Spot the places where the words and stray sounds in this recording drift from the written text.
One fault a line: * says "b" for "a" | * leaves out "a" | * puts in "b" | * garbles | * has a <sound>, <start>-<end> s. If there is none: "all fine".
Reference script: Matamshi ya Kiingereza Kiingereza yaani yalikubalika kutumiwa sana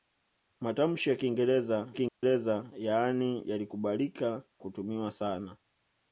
* has a dropout, 2.1-2.2 s